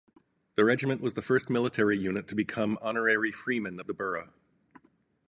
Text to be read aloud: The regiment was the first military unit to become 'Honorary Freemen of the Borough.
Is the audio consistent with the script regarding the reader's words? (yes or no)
yes